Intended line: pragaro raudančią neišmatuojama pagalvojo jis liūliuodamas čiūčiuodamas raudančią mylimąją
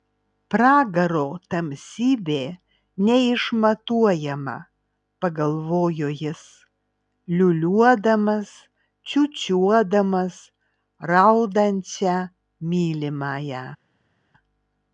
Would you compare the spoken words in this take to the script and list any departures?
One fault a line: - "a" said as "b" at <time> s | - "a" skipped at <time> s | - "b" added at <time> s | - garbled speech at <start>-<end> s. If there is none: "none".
- "raudančią" said as "tamsybė" at 1.5 s